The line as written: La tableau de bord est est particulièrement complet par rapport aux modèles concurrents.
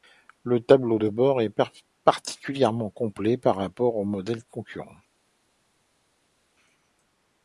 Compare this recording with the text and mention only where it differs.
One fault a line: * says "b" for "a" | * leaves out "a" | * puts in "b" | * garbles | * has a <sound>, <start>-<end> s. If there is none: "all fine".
* says "Le" for "La"
* leaves out "est"